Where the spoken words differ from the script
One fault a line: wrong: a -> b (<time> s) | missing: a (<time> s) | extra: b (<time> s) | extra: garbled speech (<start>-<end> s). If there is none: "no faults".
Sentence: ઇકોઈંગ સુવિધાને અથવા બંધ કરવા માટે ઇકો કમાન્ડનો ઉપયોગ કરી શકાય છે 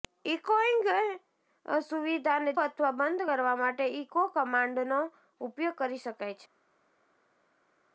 no faults